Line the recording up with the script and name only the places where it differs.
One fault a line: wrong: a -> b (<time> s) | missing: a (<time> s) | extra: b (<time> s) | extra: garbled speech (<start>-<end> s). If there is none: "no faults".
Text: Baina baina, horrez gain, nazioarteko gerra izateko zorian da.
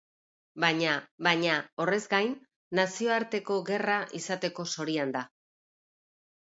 no faults